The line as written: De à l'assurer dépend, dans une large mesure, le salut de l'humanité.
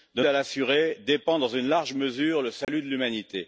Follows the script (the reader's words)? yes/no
yes